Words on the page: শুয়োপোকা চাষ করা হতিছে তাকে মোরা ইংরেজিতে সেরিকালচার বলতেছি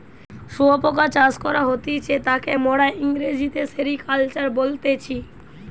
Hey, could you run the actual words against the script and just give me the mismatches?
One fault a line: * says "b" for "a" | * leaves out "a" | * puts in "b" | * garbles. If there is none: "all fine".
all fine